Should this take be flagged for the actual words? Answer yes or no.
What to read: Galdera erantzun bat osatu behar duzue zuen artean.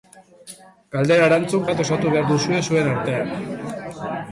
no